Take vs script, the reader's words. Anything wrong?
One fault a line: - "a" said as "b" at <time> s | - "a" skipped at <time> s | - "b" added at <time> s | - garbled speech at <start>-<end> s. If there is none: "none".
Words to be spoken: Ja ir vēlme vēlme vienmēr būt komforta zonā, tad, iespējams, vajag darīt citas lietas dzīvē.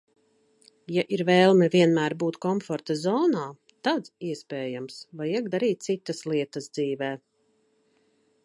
- "vēlme" skipped at 1.7 s